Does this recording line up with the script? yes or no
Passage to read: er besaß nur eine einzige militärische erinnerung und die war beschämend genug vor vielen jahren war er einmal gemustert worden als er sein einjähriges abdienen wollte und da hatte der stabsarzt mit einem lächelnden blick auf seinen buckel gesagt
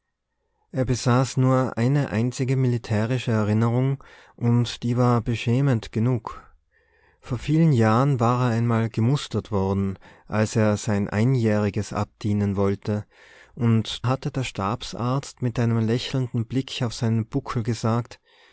no